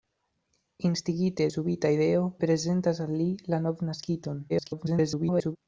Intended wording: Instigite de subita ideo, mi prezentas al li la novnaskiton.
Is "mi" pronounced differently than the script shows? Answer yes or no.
yes